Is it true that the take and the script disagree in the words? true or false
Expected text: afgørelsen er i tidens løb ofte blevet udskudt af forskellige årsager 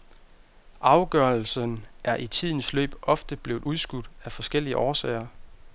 false